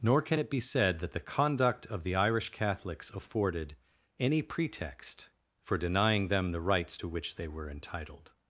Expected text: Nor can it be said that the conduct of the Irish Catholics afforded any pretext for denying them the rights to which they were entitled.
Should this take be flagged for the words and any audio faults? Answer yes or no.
no